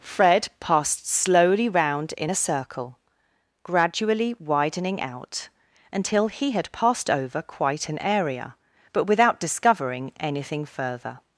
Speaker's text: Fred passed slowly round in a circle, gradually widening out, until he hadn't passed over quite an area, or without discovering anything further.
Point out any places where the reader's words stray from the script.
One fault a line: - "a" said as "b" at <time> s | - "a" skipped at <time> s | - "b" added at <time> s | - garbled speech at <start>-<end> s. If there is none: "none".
- "hadn't" said as "had" at 6.5 s
- "or" said as "but" at 8.9 s